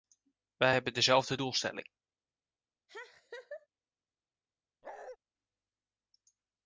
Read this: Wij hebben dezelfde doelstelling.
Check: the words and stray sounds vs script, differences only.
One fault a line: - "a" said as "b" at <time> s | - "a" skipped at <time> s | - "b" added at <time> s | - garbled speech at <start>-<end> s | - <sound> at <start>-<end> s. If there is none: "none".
- laugh at 2.9-3.7 s
- bark at 4.8-5.2 s